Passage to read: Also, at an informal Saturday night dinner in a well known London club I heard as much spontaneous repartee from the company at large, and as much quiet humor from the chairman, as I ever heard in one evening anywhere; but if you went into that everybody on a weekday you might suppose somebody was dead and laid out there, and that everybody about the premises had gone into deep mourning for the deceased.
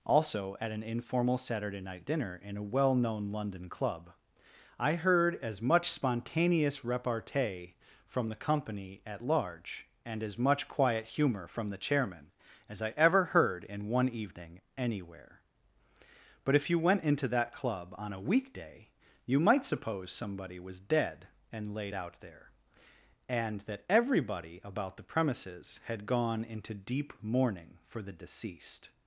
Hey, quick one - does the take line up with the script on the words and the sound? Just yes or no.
no